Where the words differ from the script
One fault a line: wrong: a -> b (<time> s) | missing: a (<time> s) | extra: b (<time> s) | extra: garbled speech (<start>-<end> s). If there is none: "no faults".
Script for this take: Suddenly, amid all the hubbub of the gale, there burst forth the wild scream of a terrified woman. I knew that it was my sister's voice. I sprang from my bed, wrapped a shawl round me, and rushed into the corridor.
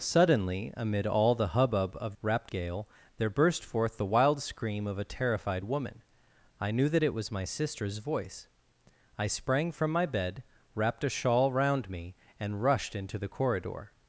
wrong: the -> wrapped (2.2 s)